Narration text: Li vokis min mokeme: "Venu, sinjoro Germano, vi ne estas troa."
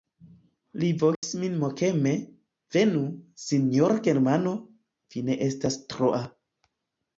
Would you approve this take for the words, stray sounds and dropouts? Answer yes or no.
no